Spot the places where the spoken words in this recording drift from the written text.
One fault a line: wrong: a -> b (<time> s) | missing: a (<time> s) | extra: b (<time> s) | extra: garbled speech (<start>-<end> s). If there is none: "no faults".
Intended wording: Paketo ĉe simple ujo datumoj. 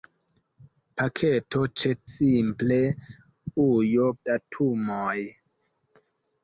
no faults